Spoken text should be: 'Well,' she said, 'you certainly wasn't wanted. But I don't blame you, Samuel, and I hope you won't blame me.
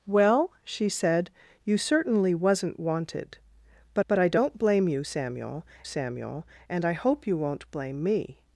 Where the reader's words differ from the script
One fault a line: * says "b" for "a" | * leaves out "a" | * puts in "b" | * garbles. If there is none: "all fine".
* puts in "but"
* puts in "Samuel"